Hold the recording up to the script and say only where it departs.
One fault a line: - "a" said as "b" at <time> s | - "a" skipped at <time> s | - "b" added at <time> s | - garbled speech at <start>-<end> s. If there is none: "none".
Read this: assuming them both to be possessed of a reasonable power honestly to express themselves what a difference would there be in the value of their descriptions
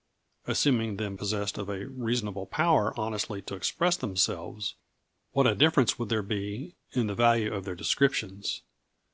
- "both to be" skipped at 1.1 s